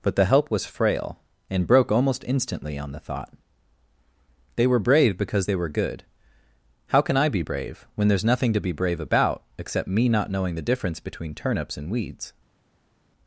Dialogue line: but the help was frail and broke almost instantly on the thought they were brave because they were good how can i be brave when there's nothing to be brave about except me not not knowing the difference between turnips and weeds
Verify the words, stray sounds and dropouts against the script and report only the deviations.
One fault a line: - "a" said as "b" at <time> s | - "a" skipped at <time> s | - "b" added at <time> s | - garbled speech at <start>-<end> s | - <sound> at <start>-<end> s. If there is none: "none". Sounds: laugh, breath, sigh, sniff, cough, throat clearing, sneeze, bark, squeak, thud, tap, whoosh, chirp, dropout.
- "not" skipped at 10.3 s